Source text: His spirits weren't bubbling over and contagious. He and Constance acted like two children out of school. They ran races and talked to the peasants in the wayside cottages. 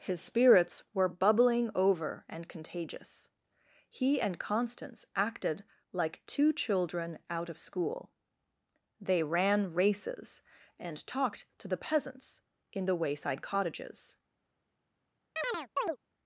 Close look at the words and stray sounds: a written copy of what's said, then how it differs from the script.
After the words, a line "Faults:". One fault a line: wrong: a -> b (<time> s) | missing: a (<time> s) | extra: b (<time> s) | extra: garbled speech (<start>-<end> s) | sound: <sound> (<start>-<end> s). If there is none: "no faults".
His spirits were bubbling over and contagious. He and Constance acted like two children out of school. They ran races and talked to the peasants in the wayside cottages.
Faults:
wrong: weren't -> were (0.9 s)
sound: chirp (15.4-16.0 s)